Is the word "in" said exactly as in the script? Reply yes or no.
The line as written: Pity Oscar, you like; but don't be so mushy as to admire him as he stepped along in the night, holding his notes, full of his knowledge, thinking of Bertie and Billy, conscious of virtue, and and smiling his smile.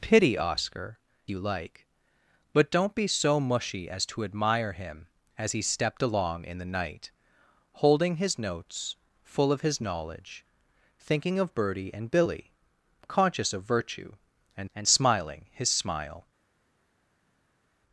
yes